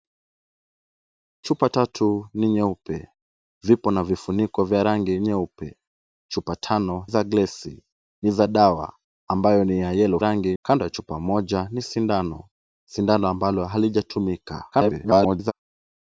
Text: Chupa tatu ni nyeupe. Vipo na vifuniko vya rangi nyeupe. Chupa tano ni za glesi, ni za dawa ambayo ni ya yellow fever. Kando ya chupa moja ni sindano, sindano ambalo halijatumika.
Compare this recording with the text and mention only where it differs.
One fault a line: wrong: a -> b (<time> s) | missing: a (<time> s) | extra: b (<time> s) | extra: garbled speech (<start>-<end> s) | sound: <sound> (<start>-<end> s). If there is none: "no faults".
missing: ni (7.1 s)
wrong: fever -> rangi (10.2 s)
extra: garbled speech (14.7-15.5 s)